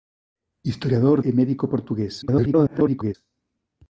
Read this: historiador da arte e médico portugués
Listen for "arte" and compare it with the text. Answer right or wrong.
wrong